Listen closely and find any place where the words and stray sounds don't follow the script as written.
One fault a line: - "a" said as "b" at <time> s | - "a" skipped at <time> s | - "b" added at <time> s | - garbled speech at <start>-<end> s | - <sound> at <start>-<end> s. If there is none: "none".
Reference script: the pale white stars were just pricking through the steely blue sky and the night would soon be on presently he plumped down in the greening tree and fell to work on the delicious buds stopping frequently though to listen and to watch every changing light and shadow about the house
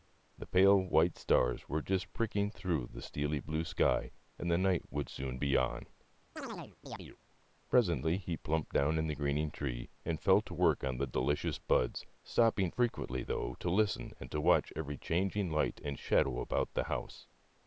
- chirp at 6.4-7.2 s